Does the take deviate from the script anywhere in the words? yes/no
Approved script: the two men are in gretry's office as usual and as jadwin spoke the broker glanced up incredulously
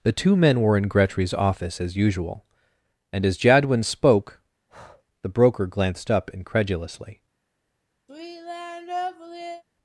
yes